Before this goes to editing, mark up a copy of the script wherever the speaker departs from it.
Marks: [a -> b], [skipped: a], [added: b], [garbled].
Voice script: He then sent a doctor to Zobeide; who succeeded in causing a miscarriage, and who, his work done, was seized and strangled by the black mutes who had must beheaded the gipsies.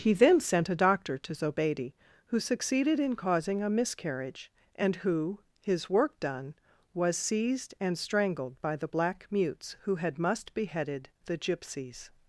He then sent a doctor to Zobeide; who succeeded in causing a miscarriage, and who, his work done, was seized and strangled by the black mutes who had must beheaded the gipsies.